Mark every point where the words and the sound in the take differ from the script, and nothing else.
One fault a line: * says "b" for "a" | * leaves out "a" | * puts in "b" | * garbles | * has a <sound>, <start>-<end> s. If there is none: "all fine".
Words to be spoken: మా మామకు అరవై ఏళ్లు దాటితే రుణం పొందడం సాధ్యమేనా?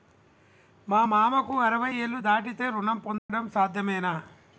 * has a dropout, 3.2-3.3 s